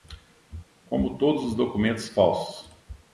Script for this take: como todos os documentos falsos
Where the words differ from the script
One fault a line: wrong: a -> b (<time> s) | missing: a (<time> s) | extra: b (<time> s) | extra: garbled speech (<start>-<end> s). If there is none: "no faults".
no faults